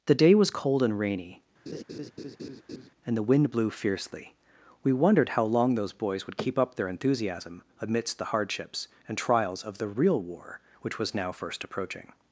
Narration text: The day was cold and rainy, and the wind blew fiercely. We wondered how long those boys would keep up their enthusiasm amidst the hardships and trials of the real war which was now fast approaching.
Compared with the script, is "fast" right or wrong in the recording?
wrong